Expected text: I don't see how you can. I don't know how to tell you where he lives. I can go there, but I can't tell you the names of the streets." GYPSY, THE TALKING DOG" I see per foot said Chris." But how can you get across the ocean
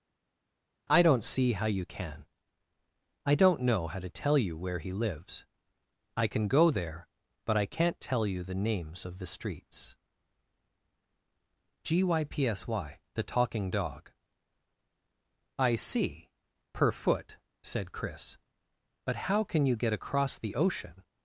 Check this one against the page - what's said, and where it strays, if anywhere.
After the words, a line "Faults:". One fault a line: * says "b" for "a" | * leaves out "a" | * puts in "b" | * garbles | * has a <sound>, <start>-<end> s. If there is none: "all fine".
I don't see how you can. I don't know how to tell you where he lives. I can go there, but I can't tell you the names of the streets." GYPSY, THE TALKING DOG" I see per foot said Chris." But how can you get across the ocean
Faults:
all fine